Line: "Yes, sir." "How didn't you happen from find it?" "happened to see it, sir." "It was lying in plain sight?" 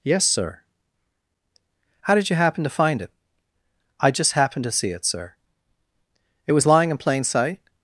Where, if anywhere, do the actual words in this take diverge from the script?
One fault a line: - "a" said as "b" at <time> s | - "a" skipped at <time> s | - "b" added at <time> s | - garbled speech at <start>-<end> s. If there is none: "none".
- "didn't" said as "did" at 2.1 s
- "from" said as "to" at 2.6 s
- "I just" added at 4.0 s